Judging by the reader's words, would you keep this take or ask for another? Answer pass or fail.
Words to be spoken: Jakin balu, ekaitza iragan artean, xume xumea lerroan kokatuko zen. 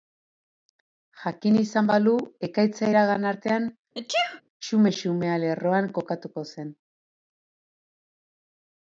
fail